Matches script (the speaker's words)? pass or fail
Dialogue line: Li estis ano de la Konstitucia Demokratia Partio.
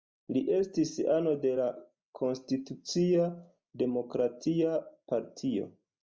pass